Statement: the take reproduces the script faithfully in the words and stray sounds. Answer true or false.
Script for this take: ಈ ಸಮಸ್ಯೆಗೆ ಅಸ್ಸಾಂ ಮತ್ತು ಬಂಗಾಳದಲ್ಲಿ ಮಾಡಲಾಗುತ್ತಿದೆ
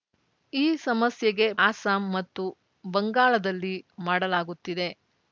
true